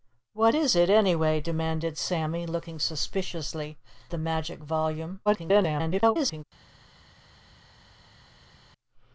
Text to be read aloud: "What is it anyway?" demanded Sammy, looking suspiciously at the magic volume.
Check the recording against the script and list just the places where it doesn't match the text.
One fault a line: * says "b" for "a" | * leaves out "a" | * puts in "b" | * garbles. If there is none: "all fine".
* leaves out "at"
* garbles